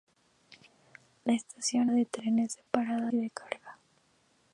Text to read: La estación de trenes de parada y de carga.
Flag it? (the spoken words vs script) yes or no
no